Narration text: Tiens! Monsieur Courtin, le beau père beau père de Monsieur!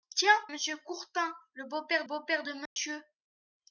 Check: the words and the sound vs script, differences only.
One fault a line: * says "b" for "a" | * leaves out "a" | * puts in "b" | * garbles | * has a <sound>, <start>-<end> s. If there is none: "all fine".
* has a dropout, 2.7-2.8 s